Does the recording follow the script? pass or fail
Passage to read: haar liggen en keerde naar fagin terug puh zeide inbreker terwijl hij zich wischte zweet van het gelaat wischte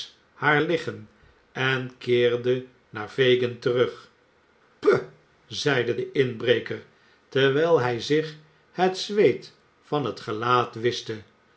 fail